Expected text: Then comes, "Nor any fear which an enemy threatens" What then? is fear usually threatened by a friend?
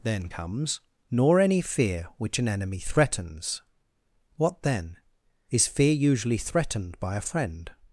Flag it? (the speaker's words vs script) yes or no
no